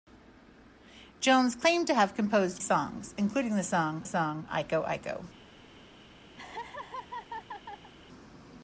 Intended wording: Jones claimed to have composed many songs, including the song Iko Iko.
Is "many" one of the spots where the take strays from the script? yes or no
yes